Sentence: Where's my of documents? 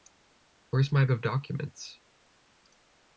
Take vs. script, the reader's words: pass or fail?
pass